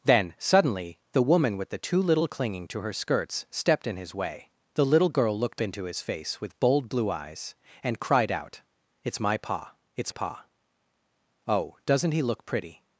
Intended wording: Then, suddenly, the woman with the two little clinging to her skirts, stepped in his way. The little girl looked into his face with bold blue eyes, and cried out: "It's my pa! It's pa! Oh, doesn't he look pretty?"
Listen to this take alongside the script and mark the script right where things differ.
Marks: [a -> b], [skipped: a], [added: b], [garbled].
Then, suddenly, the woman with the two little clinging to her skirts, stepped in his way. The little girl looked into his face with bold blue eyes, and cried out: "It's my pa! It's pa! Oh, doesn't he look pretty?"